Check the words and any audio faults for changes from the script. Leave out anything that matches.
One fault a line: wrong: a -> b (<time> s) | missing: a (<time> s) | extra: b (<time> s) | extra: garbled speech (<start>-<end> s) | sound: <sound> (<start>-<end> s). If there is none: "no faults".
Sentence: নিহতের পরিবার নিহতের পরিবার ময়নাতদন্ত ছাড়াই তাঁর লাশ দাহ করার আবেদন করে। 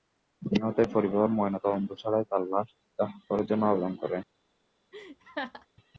missing: নিহতের পরিবার (1.3 s)
extra: জন্য (3.5 s)
sound: laugh (4.9-5.7 s)